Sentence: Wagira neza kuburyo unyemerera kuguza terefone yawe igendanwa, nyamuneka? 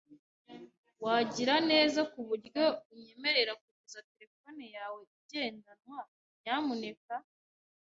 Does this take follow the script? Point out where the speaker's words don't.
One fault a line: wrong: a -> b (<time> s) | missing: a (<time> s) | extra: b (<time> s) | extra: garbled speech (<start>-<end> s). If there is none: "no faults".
no faults